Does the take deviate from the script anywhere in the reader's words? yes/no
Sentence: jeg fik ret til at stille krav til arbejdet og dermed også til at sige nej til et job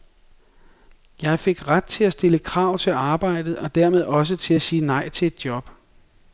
no